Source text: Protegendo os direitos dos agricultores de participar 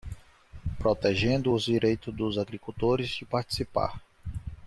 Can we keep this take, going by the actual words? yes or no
yes